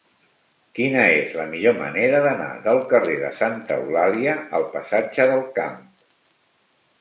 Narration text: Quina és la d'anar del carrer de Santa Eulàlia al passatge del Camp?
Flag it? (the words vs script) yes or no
yes